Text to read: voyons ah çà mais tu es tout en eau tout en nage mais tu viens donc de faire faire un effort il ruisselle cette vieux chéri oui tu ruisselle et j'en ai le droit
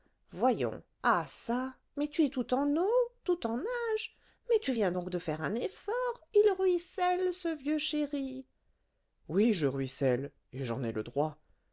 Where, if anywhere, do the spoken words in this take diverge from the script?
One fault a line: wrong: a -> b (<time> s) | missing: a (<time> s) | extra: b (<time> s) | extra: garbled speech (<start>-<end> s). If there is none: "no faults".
missing: faire (5.4 s)
wrong: cette -> ce (7.3 s)
wrong: tu -> je (9.5 s)